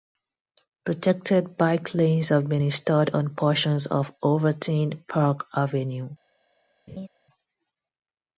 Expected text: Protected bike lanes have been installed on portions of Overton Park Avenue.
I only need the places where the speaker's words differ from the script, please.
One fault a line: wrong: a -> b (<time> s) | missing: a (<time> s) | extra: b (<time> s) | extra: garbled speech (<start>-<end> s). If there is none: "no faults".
no faults